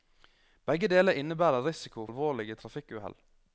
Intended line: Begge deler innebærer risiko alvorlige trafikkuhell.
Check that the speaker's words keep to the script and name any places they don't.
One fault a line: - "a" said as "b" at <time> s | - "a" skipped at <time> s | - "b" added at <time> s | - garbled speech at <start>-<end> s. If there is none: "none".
none